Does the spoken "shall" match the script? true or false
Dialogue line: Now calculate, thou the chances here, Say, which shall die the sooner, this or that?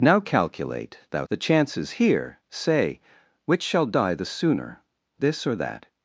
true